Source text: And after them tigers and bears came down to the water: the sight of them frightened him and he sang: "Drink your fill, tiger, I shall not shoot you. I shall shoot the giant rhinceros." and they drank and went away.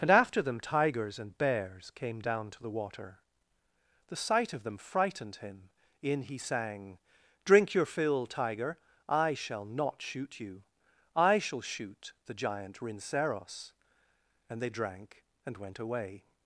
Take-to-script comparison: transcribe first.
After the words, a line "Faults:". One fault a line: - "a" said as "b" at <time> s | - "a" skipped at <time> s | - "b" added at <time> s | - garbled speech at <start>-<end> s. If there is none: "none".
And after them tigers and bears came down to the water: the sight of them frightened him in he sang: "Drink your fill, tiger, I shall not shoot you. I shall shoot the giant rhinceros." and they drank and went away.
Faults:
- "and" said as "in" at 6.0 s